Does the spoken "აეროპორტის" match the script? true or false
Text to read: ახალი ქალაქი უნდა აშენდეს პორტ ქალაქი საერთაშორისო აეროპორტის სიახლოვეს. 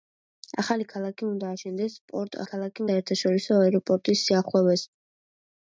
true